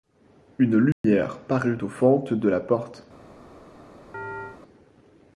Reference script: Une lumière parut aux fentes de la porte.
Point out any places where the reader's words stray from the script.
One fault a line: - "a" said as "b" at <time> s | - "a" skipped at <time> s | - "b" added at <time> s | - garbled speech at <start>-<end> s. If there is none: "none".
none